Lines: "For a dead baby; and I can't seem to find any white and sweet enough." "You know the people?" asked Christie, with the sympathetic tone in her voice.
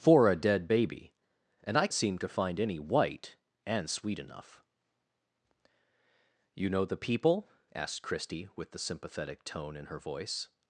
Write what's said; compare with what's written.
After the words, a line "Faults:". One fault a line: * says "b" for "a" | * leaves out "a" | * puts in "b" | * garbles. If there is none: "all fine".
"For a dead baby; and I seem to find any white and sweet enough." "You know the people?" asked Christie, with the sympathetic tone in her voice.
Faults:
* leaves out "can't"